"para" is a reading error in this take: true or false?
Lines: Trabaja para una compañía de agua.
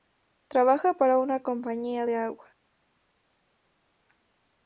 false